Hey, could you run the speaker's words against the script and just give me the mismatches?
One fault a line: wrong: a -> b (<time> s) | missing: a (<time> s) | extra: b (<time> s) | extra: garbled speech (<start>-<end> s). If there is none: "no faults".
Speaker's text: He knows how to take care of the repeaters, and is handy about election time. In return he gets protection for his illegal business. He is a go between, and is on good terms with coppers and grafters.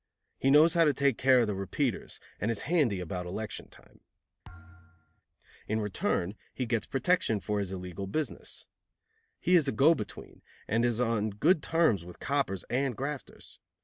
no faults